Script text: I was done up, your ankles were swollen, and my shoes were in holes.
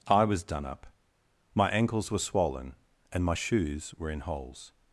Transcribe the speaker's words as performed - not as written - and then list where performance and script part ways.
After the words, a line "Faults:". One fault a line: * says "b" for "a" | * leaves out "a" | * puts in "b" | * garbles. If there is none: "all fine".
I was done up, my ankles were swollen, and my shoes were in holes.
Faults:
* says "my" for "your"